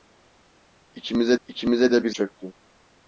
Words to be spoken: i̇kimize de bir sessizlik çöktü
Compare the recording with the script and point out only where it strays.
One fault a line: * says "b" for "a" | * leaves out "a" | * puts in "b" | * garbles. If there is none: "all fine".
* puts in "i̇kimize"
* leaves out "sessizlik"